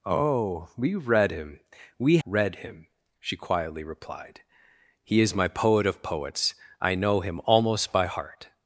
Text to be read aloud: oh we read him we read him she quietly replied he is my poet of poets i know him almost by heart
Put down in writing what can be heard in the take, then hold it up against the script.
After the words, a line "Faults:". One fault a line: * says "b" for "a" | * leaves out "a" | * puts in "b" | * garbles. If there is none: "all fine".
oh we read him we read him she quietly replied he is my poet of poets i know him almost by heart
Faults:
all fine